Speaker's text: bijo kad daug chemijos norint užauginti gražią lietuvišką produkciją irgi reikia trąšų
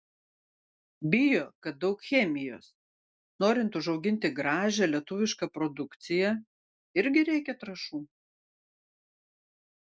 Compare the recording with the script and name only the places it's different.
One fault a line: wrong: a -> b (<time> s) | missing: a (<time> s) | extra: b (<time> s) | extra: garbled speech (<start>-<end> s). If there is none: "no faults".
no faults